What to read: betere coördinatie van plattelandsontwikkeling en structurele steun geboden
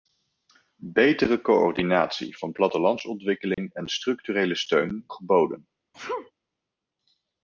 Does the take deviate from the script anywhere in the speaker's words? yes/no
no